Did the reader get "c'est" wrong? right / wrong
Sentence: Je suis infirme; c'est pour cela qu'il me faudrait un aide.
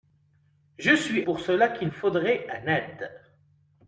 wrong